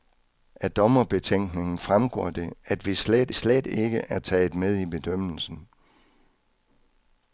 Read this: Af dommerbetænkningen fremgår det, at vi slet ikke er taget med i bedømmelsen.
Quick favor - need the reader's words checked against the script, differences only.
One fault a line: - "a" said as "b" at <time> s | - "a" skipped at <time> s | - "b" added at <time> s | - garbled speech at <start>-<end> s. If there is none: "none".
- "slet" added at 3.3 s